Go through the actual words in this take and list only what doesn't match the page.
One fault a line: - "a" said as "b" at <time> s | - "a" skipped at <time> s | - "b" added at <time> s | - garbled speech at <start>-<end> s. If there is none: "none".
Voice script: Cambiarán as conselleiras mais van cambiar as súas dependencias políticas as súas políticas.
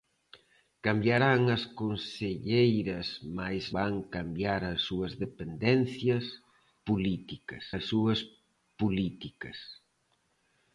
none